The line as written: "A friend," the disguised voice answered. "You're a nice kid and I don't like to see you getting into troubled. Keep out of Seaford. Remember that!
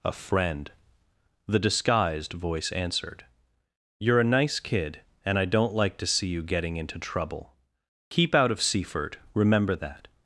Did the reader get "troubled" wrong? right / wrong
wrong